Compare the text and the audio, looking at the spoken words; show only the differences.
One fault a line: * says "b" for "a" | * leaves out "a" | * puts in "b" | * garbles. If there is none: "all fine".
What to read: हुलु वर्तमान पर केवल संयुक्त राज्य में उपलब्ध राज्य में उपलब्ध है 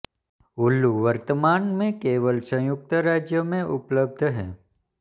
* says "में" for "पर"
* leaves out "राज्य में उपलब्ध"